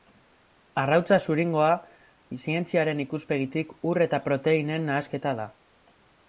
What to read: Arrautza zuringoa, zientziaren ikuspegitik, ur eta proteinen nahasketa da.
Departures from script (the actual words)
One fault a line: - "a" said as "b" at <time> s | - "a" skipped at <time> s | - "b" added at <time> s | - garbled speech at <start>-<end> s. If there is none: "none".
none